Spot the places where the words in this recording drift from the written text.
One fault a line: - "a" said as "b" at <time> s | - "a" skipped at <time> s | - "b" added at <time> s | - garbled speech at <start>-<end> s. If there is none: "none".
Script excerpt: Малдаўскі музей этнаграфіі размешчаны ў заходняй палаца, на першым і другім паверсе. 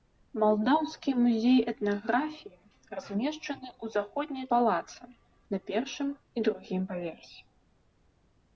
none